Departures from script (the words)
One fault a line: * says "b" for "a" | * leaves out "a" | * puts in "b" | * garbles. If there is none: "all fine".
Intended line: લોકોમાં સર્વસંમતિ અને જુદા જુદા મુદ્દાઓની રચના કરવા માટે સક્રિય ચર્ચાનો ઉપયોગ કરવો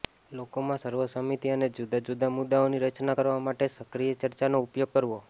all fine